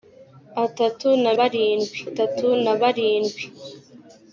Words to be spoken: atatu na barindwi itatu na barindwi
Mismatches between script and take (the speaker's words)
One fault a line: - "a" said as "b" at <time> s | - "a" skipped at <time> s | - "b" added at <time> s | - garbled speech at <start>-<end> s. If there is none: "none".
none